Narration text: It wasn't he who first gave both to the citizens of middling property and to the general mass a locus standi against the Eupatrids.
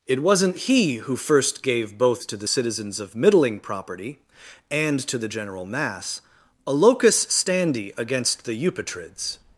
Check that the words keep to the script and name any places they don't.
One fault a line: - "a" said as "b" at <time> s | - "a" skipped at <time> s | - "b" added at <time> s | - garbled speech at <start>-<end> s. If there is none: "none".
none